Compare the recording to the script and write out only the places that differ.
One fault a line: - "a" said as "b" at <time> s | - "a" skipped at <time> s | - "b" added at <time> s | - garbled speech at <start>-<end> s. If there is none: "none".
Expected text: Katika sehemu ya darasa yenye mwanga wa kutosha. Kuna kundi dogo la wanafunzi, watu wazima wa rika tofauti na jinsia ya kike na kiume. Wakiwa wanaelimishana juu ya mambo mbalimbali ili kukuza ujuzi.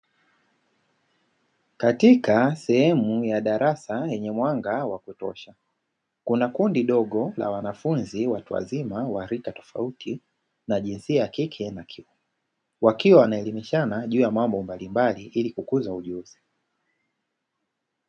none